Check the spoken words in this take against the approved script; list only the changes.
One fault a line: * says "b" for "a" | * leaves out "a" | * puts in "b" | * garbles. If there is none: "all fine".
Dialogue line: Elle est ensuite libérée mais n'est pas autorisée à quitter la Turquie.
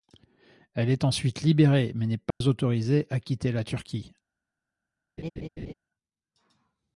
all fine